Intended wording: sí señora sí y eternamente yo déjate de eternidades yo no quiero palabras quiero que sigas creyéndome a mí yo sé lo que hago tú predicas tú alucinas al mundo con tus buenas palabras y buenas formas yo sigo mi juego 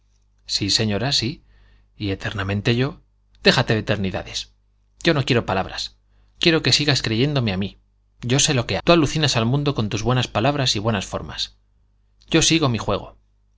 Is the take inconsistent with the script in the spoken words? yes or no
yes